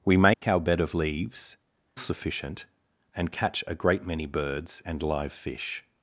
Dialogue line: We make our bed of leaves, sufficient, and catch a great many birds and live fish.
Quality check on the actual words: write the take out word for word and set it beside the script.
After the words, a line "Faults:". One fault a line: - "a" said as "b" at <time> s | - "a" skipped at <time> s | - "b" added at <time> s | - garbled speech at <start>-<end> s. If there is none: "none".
We make our bed of leaves, sufficient, and catch a great many birds and live fish.
Faults:
none